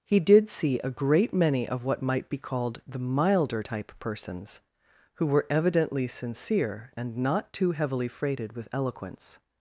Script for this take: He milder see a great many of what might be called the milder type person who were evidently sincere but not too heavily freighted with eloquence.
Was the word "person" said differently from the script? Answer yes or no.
yes